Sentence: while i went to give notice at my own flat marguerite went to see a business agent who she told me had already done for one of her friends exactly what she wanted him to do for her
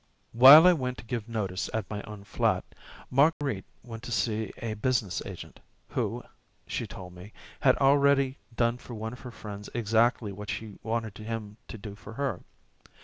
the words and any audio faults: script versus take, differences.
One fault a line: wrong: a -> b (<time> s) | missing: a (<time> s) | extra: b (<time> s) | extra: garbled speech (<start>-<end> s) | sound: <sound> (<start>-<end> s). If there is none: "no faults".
sound: dropout (3.3-3.4 s)